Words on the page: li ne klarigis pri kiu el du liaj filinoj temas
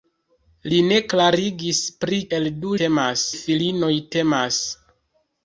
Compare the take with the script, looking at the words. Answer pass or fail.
fail